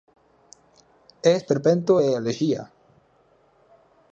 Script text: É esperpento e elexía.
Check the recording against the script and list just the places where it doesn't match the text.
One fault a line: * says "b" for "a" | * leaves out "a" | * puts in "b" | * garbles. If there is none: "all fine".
all fine